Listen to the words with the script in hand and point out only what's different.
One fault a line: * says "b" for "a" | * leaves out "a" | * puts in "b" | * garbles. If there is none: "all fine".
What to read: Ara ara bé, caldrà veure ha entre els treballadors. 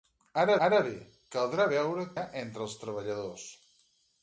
all fine